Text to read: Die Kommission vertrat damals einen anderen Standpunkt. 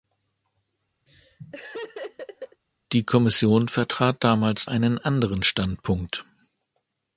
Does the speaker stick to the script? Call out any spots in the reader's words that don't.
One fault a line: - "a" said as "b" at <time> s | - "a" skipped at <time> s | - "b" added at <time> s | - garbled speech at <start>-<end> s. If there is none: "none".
none